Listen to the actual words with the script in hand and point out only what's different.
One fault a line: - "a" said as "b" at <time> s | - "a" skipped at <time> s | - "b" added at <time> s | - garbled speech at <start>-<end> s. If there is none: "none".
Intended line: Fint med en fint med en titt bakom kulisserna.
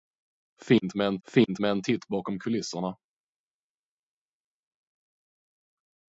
none